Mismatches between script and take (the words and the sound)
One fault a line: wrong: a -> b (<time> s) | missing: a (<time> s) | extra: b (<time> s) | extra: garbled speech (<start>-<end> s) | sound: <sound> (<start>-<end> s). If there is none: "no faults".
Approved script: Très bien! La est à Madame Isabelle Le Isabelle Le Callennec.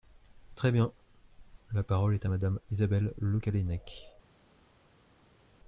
extra: parole (1.8 s)
missing: Isabelle Le (3.4 s)